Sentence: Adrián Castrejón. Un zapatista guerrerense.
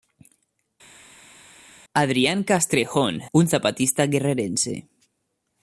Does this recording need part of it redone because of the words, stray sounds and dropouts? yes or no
no